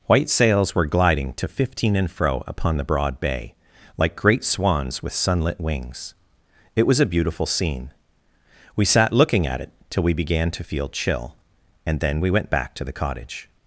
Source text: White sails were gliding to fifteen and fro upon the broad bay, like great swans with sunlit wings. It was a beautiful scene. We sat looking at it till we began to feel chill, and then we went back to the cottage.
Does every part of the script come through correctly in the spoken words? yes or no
yes